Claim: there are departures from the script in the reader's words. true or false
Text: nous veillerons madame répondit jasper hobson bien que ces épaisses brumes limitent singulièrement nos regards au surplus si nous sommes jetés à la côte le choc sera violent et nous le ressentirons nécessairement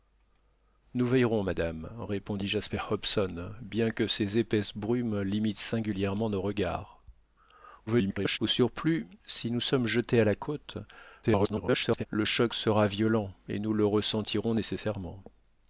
true